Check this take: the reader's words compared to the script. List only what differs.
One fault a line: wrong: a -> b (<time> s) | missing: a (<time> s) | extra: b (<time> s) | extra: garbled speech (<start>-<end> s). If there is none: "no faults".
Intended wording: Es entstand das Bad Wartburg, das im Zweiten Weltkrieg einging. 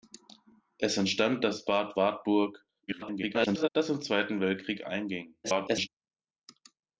extra: garbled speech (2.9-3.7 s)
extra: garbled speech (5.4-5.9 s)